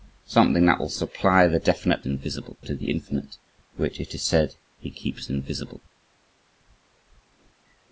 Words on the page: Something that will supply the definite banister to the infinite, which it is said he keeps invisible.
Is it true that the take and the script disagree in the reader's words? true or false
true